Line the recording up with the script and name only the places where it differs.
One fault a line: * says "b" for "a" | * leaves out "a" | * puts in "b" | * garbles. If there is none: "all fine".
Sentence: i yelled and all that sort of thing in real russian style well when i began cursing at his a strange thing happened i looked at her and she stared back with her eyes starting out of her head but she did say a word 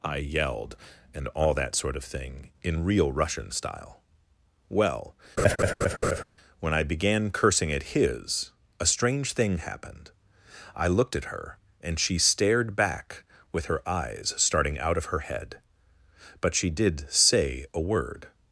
all fine